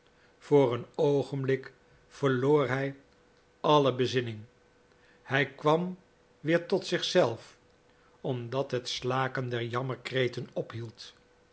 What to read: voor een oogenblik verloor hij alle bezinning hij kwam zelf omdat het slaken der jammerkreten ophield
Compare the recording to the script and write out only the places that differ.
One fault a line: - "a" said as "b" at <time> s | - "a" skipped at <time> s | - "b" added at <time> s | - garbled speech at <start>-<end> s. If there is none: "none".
- "weer tot zich" added at 6.4 s